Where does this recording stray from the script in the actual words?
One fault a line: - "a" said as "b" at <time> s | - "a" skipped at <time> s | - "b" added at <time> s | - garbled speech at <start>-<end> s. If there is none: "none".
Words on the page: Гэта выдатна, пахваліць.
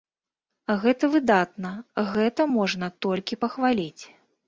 - "гэта можна толькі" added at 2.1 s